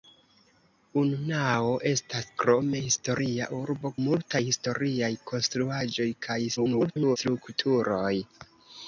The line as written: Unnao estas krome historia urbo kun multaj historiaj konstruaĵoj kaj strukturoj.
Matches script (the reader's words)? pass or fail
fail